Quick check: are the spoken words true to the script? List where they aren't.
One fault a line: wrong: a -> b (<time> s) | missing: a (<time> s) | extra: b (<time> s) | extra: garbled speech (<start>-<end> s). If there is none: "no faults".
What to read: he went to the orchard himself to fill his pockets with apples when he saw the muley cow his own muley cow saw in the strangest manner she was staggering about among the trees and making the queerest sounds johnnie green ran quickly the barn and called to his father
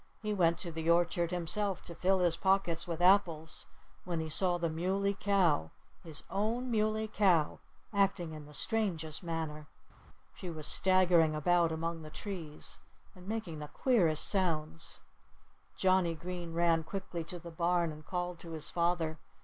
wrong: saw -> acting (7.9 s)
extra: to (17.2 s)